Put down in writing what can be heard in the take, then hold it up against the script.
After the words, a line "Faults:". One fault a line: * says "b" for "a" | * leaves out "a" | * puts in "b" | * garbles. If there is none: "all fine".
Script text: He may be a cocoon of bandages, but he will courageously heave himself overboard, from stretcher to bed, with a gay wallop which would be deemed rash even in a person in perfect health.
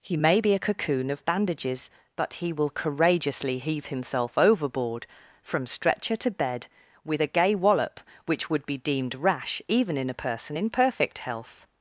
He may be a cocoon of bandages, but he will courageously heave himself overboard, from stretcher to bed, with a gay wallop which would be deemed rash even in a person in perfect health.
Faults:
all fine